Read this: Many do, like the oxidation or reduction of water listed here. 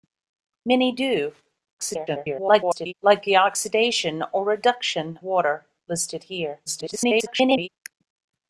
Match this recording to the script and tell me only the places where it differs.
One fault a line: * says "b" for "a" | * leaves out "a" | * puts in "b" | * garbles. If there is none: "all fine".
* garbles
* leaves out "of"
* garbles